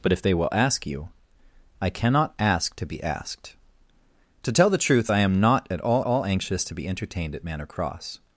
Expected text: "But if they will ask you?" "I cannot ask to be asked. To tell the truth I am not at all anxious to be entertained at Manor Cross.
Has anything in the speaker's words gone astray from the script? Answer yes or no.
yes